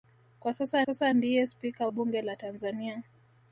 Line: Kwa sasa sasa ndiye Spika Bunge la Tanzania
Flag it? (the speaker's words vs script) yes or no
no